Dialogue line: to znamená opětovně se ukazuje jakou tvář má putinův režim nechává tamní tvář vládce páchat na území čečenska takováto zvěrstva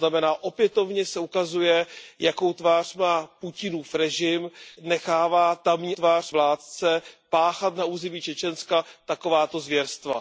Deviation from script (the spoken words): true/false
false